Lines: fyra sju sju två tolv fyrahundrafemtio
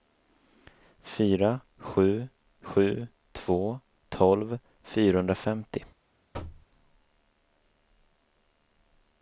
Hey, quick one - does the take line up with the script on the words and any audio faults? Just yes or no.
no